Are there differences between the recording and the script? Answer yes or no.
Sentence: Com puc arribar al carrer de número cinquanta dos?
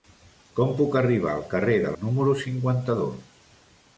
no